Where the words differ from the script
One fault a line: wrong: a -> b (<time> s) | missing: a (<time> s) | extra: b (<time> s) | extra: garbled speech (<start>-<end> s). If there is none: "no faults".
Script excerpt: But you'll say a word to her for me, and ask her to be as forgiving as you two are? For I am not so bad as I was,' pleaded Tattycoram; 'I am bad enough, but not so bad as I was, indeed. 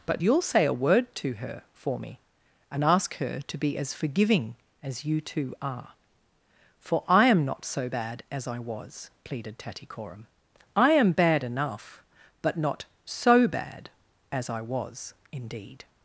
no faults